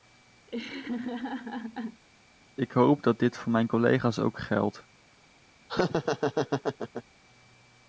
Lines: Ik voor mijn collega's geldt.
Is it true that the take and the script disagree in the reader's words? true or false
true